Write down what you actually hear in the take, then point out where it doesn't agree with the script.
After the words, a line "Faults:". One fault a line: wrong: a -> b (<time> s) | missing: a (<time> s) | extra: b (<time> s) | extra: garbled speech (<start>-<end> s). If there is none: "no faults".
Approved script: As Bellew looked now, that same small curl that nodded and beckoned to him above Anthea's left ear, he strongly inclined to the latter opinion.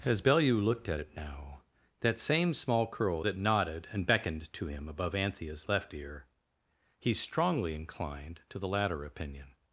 As Bellew looked at it now, that same small curl that nodded and beckoned to him above Anthea's left ear, he strongly inclined to the latter opinion.
Faults:
extra: at it (0.9 s)